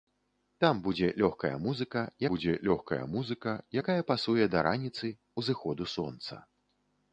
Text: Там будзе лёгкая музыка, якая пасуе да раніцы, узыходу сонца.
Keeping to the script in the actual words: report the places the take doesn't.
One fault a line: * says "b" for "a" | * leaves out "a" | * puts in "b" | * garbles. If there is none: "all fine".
* puts in "будзе лёгкая музыка"